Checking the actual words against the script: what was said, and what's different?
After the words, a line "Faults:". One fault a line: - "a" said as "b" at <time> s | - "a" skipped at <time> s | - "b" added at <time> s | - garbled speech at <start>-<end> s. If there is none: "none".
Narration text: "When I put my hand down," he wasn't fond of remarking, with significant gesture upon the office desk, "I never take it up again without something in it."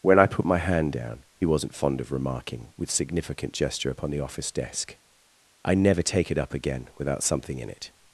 "When I put my hand down," he wasn't fond of remarking, with significant gesture upon the office desk, "I never take it up again without something in it."
Faults:
none